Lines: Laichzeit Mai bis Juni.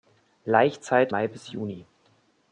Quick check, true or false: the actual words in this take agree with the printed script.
true